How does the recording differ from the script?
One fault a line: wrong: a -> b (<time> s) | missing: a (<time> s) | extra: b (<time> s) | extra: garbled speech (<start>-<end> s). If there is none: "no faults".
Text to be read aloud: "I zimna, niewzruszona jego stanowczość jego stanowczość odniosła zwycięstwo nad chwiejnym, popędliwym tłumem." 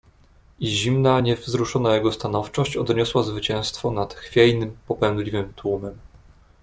missing: jego stanowczość (2.8 s)